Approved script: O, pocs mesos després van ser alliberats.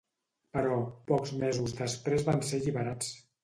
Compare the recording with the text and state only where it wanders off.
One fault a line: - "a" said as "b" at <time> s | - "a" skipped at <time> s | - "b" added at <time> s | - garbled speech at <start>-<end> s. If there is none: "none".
- "O" said as "Però" at 0.6 s